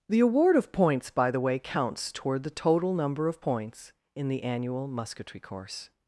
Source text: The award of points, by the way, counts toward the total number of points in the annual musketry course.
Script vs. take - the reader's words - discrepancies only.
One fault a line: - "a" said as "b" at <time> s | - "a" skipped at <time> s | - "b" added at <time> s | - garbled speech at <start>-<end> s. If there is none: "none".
none